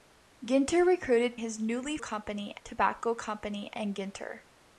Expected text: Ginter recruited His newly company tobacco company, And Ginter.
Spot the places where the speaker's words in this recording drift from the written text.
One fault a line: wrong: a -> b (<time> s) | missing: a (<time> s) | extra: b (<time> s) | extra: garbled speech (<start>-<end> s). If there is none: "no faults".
no faults